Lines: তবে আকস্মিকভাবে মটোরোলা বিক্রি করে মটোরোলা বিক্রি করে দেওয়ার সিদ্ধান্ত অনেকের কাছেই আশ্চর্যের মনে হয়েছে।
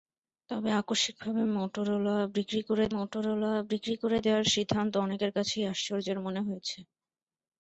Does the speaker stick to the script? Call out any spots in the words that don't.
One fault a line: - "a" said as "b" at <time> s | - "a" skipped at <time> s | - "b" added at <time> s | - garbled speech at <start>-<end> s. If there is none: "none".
none